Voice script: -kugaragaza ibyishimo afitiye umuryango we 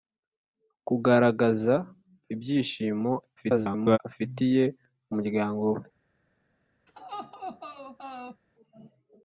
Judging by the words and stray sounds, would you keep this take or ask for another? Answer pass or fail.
fail